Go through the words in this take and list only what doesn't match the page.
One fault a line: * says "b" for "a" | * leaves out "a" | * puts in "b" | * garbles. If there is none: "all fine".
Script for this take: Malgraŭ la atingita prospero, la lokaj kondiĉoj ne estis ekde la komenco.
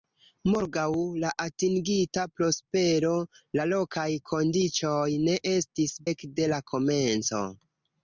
all fine